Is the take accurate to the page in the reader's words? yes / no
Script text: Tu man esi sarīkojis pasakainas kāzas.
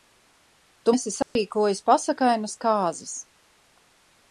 no